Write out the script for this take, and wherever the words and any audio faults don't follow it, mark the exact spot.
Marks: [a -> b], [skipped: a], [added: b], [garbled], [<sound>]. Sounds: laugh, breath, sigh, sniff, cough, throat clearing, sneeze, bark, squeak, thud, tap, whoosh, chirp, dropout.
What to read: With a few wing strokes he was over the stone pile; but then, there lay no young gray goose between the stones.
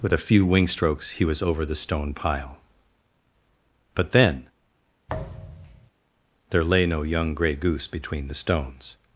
With a few wing strokes he was over the stone pile; but then, [thud] there lay no young gray goose between the stones.